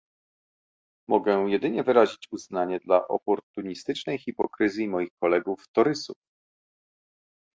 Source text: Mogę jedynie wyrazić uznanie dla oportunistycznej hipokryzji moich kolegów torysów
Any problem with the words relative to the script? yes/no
no